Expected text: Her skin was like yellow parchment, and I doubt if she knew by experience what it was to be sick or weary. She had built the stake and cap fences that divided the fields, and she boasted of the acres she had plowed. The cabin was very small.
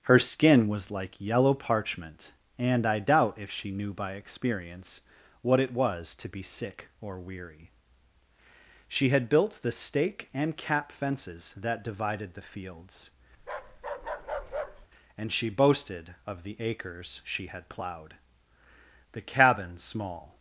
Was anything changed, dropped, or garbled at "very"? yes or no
yes